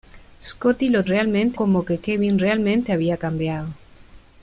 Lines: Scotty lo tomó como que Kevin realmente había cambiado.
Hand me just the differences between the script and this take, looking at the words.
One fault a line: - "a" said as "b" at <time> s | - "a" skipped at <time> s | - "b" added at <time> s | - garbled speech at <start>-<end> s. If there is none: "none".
- "tomó" said as "realmente" at 1.1 s